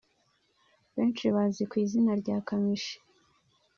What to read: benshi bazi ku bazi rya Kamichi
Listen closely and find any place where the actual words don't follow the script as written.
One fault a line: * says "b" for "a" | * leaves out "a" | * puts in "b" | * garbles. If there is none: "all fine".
* says "izina" for "bazi"